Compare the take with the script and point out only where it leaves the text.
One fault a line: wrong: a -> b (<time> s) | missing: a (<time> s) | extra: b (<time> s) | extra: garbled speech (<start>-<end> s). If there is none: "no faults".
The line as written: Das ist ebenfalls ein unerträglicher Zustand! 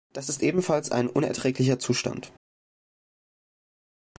no faults